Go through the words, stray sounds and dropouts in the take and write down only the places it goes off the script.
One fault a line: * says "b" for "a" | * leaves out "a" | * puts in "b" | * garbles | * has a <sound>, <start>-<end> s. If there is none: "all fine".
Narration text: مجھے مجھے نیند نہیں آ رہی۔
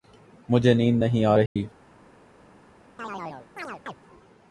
* leaves out "مجھے"
* has a dropout, 1.5-1.6 s
* has a chirp, 3.0-4.0 s